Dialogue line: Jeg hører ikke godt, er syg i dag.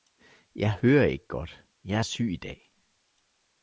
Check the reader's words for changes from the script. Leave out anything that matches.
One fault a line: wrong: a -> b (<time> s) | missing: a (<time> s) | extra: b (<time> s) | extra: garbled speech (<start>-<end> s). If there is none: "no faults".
extra: jeg (1.8 s)